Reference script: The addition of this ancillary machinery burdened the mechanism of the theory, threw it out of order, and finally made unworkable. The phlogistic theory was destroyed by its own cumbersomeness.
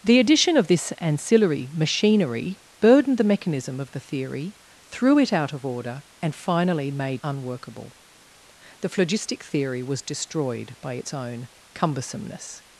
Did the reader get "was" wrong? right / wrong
right